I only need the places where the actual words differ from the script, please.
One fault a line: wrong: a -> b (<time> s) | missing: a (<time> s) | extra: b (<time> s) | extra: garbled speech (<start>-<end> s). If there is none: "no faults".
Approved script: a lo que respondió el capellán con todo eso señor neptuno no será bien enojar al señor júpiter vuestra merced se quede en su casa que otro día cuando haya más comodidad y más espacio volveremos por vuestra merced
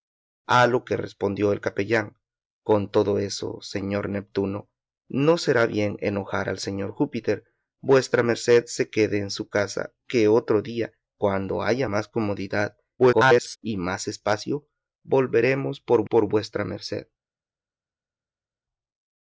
extra: garbled speech (13.0-13.6 s)
extra: por (16.0 s)